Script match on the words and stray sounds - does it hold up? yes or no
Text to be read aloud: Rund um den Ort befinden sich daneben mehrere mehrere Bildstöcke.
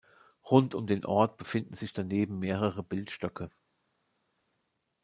no